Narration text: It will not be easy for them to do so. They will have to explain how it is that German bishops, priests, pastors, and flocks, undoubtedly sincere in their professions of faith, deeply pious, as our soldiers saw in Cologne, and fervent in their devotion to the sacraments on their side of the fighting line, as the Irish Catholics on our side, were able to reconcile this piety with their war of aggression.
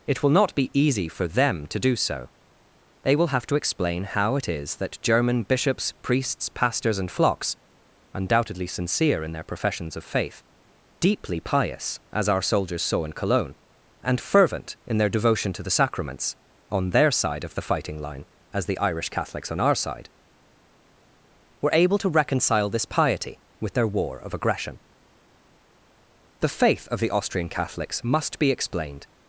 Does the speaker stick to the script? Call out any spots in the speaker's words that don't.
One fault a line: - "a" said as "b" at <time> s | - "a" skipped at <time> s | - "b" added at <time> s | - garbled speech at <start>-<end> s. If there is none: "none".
- "The faith of the Austrian Catholics must be explained" added at 26.4 s